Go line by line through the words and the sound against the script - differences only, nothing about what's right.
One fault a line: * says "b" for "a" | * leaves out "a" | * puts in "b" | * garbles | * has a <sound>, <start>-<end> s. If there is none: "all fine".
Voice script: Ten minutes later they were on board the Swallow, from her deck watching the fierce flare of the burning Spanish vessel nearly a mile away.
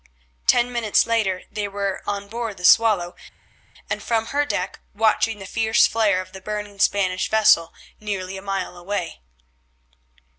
* puts in "and"